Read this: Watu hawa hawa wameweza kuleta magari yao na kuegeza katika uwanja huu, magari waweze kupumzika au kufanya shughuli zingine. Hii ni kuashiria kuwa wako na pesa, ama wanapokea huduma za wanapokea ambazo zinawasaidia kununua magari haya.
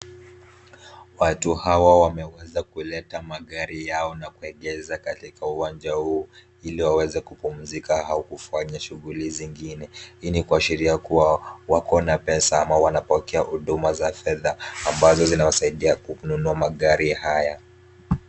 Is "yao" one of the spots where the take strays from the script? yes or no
no